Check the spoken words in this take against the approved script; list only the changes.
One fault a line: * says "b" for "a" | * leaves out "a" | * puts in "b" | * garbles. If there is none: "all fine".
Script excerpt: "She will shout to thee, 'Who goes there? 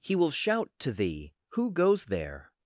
* says "He" for "She"